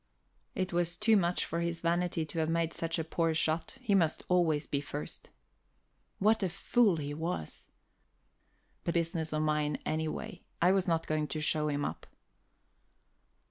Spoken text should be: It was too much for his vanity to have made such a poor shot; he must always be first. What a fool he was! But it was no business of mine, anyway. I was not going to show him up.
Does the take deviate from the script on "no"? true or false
true